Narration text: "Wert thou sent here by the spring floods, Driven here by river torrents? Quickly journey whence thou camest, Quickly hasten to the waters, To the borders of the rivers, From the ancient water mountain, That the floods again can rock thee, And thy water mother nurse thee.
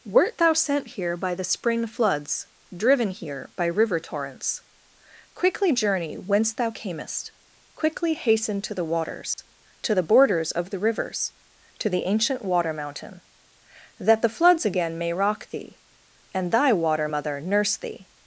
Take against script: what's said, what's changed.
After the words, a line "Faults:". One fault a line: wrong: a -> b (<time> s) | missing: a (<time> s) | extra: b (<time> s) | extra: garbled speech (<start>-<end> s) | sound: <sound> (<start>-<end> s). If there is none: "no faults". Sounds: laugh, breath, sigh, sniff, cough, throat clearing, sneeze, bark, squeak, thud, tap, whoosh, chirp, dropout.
"Wert thou sent here by the spring floods, Driven here by river torrents? Quickly journey whence thou camest, Quickly hasten to the waters, To the borders of the rivers, To the ancient water mountain, That the floods again may rock thee, And thy water mother nurse thee.
Faults:
sound: dropout (9.3-9.4 s)
wrong: From -> To (11.8 s)
wrong: can -> may (15.0 s)